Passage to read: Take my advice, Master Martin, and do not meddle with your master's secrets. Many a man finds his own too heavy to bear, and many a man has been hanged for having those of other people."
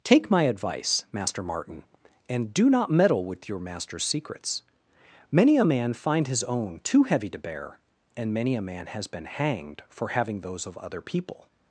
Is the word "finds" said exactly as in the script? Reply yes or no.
no